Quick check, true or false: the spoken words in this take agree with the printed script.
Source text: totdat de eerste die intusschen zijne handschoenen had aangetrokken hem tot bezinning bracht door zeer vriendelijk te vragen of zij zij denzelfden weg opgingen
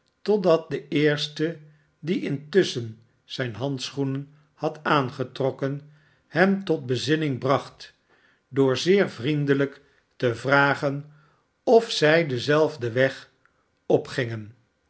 false